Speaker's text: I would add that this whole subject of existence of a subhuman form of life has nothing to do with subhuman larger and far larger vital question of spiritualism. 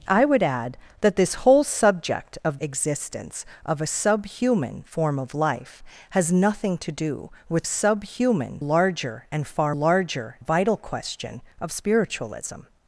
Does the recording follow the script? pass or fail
pass